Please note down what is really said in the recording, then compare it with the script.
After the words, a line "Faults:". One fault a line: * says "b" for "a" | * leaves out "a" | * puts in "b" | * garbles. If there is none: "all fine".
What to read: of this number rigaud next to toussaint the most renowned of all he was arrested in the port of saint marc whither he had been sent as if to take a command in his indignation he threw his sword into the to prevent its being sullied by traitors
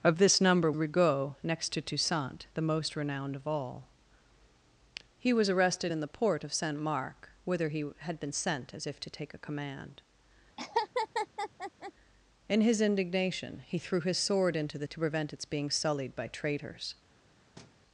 of this number rigaud next to toussaint the most renowned of all he was arrested in the port of saint marc whither he had been sent as if to take a command in his indignation he threw his sword into the to prevent its being sullied by traitors
Faults:
all fine